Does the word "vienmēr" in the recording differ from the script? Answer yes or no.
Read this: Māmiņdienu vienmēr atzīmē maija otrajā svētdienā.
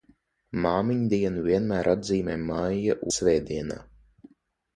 no